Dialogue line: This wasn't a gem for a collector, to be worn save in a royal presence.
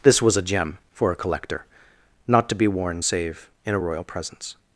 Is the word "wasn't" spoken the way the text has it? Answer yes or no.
no